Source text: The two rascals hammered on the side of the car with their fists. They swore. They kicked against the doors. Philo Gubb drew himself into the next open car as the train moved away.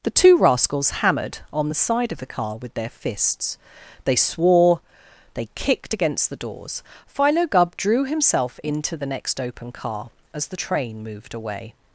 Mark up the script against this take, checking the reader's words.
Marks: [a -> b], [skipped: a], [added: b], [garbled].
The two rascals hammered on the side of the car with their fists. They swore. They kicked against the doors. Philo Gubb drew himself into the next open car as the train moved away.